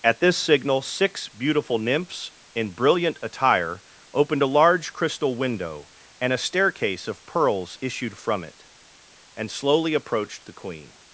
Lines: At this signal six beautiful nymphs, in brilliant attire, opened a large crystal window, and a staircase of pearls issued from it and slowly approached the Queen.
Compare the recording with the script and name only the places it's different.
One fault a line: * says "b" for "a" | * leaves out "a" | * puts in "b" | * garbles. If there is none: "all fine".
all fine